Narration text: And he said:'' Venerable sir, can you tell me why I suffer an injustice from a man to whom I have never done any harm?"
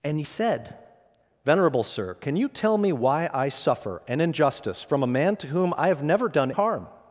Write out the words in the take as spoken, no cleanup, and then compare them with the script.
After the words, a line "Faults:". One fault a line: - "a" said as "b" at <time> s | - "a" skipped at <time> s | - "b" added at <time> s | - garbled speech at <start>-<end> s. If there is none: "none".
And he said:'' Venerable sir, can you tell me why I suffer an injustice from a man to whom I have never done harm?"
Faults:
- "any" skipped at 6.5 s